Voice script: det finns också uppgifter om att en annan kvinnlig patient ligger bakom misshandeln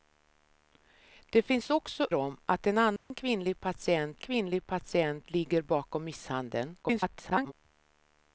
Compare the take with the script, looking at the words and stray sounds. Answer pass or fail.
fail